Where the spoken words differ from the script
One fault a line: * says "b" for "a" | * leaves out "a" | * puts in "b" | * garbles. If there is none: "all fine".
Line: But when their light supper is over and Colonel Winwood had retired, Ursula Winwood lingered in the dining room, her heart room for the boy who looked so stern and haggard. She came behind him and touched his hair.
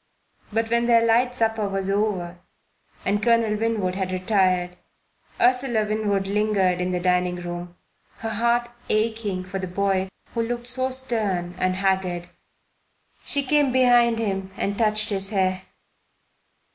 * says "was" for "is"
* says "aching" for "room"